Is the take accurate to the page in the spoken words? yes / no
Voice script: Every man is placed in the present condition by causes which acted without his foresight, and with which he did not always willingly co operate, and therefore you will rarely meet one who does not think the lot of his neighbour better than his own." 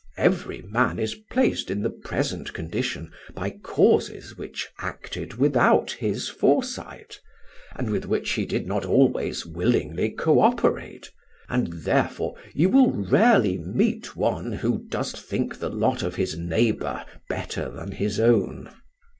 no